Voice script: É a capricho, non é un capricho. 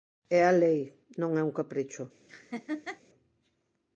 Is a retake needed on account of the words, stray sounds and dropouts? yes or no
yes